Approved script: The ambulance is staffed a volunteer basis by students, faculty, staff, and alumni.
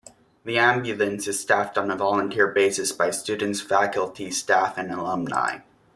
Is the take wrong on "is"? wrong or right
right